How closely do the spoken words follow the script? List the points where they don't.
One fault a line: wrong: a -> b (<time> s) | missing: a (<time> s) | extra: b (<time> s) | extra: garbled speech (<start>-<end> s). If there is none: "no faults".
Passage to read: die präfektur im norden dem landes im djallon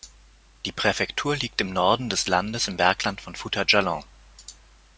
extra: liegt (1.4 s)
wrong: dem -> des (2.1 s)
extra: bergland von fouta (2.8 s)